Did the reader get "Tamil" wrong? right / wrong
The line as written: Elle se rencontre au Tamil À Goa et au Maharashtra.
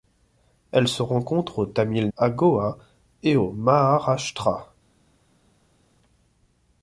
right